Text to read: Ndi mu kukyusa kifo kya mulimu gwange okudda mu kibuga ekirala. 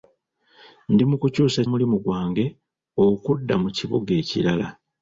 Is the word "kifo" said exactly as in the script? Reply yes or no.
no